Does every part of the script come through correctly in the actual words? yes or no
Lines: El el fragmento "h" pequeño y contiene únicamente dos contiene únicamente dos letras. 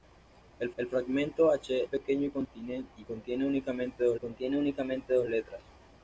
yes